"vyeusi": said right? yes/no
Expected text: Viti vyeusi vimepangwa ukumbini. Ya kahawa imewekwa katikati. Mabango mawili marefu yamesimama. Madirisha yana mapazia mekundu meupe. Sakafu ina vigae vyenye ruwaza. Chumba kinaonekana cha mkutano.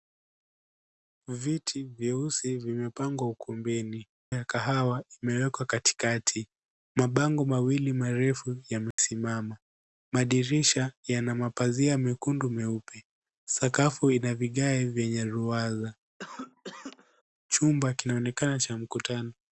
yes